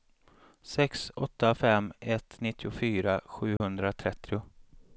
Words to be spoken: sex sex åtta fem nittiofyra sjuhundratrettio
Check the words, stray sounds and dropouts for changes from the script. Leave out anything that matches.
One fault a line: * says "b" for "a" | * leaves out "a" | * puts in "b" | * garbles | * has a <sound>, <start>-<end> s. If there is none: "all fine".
* leaves out "sex"
* puts in "ett"
* has a dropout, 3.6-3.6 s